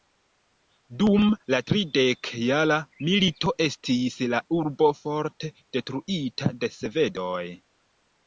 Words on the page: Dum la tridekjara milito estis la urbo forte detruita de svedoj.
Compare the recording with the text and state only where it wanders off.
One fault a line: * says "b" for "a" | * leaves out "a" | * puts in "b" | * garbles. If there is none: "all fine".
all fine